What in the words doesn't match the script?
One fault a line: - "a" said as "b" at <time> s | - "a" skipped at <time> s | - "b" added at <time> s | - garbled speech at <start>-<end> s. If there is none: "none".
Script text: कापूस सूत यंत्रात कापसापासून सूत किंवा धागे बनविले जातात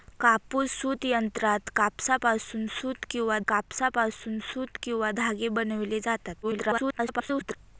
- "कापसापासून सूत किंवा" added at 3.5 s
- garbled speech at 6.4-7.6 s